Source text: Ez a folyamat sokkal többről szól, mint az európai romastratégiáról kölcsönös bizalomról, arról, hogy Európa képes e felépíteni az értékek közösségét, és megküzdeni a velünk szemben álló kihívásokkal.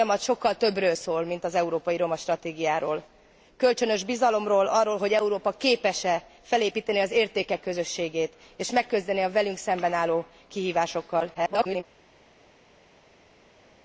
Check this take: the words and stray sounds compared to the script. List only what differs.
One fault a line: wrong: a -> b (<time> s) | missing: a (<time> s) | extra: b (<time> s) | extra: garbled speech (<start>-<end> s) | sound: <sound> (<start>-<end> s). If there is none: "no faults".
extra: garbled speech (11.3-11.8 s)